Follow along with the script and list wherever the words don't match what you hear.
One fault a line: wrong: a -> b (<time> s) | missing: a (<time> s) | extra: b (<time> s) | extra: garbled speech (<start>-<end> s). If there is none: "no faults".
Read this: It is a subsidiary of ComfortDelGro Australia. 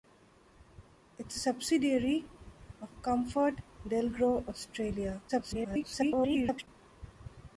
extra: garbled speech (5.3-6.7 s)